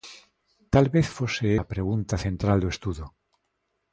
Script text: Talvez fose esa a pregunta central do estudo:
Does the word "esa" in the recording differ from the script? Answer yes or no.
yes